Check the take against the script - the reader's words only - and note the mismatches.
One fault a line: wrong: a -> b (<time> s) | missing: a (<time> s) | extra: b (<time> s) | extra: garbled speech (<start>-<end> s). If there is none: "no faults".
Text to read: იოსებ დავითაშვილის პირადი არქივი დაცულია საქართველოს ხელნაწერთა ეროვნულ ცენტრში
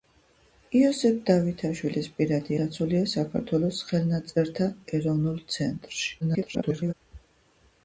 missing: არქივი (2.6 s)
extra: garbled speech (6.2-6.9 s)